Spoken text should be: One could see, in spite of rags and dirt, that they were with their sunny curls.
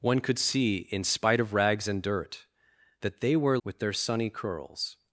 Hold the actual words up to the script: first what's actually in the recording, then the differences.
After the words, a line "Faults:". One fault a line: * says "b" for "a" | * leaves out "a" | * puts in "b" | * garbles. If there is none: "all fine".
One could see, in spite of rags and dirt, that they were with their sunny curls.
Faults:
all fine